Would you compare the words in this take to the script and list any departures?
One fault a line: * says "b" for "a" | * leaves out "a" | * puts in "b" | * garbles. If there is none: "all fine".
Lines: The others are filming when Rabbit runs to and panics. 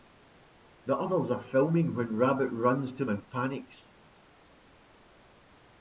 all fine